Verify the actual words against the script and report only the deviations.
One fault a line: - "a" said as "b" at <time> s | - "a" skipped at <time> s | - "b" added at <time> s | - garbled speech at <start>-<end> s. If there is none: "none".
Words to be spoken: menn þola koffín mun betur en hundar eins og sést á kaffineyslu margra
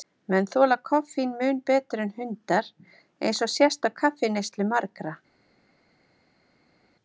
none